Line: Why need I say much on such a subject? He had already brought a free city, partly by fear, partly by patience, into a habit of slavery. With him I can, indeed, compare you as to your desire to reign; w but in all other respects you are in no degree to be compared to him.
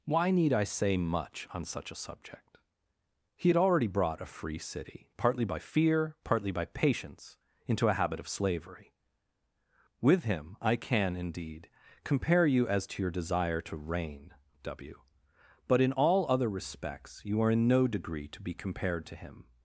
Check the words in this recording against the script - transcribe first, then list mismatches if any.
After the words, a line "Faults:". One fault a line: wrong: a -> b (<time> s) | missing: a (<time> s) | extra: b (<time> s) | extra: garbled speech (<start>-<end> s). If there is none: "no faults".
Why need I say much on such a subject? He had already brought a free city, partly by fear, partly by patience, into a habit of slavery. With him I can, indeed, compare you as to your desire to reign; w but in all other respects you are in no degree to be compared to him.
Faults:
no faults